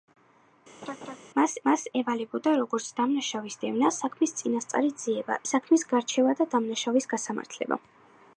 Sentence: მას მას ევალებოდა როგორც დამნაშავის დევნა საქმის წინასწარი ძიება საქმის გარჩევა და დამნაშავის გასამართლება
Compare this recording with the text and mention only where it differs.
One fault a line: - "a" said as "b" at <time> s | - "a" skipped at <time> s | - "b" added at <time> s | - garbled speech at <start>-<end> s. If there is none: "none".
none